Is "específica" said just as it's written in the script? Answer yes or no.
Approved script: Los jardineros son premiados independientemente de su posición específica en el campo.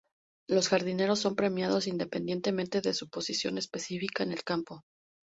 yes